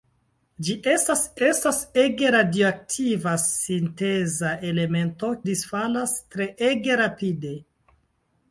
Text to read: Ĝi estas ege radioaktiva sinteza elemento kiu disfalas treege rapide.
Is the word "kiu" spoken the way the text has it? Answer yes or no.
no